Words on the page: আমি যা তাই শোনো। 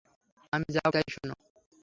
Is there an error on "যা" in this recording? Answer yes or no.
no